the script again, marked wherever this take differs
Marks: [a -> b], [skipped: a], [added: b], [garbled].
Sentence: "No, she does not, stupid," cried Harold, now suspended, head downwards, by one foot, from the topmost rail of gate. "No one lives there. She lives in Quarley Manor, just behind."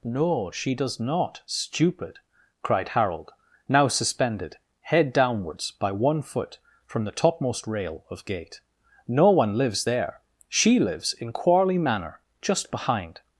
"No, she does not, stupid," cried Harold, now suspended, head downwards, by one foot, from the topmost rail of gate. "No one lives there. She lives in Quarley Manor, just behind."